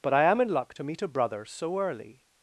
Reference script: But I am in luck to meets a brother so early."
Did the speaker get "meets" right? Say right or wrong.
wrong